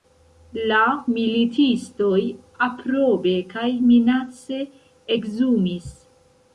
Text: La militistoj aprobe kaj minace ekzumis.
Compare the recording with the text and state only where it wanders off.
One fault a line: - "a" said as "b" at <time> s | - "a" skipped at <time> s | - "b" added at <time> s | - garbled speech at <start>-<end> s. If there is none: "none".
none